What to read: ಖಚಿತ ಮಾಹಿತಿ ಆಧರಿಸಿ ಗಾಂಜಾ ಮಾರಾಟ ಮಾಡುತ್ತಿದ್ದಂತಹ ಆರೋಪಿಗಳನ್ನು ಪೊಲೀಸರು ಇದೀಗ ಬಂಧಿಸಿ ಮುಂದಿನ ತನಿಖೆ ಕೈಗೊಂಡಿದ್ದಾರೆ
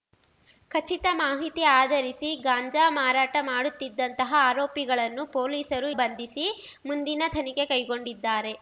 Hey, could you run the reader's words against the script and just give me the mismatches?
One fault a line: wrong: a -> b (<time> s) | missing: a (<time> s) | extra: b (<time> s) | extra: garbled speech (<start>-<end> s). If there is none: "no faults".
missing: ಇದೀಗ (5.9 s)